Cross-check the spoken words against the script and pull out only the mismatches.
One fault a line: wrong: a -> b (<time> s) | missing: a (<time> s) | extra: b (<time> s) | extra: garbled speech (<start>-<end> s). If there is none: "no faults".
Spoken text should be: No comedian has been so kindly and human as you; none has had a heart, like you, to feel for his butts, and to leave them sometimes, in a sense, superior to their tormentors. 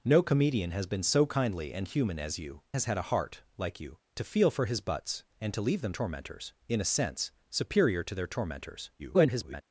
missing: none (2.6 s)
wrong: sometimes -> tormentors (5.9 s)
extra: garbled speech (9.0-9.6 s)